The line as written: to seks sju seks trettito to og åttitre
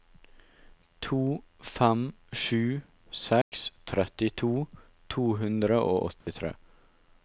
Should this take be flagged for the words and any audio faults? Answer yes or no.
yes